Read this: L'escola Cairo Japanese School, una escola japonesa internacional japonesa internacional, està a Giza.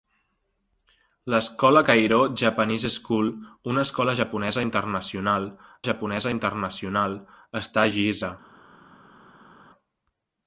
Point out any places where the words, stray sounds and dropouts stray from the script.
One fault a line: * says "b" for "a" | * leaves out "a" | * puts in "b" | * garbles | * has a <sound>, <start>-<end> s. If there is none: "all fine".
all fine